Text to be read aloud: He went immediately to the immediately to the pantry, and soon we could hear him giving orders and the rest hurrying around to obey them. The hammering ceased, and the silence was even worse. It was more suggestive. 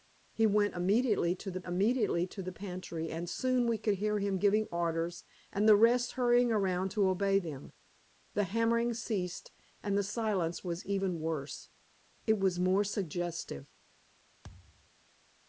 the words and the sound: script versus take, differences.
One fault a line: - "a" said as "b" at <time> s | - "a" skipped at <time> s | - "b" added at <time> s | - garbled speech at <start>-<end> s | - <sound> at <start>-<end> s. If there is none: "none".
- thud at 14.4-14.9 s